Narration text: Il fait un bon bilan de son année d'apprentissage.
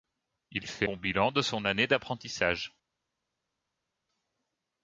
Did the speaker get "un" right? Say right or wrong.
wrong